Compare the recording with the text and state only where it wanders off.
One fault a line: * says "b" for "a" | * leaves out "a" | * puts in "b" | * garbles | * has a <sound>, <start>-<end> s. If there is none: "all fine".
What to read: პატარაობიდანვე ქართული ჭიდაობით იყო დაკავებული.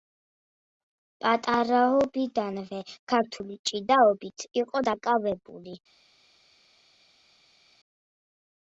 all fine